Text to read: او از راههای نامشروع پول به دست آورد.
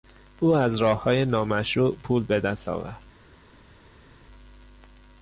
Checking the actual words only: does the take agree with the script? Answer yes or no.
yes